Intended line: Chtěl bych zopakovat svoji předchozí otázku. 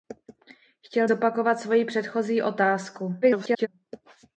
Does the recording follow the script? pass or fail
fail